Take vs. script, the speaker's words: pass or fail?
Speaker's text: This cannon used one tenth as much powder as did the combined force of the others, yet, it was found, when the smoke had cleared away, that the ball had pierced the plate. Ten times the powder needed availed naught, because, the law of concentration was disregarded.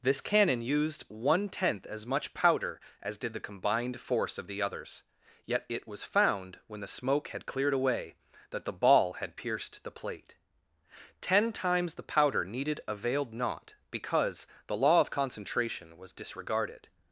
pass